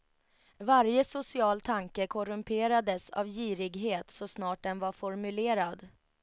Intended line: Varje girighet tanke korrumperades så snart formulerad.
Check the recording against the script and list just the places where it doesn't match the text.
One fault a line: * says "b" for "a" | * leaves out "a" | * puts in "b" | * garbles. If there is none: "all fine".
* says "social" for "girighet"
* puts in "av girighet"
* puts in "den var"